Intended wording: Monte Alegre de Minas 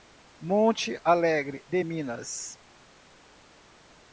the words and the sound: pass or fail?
pass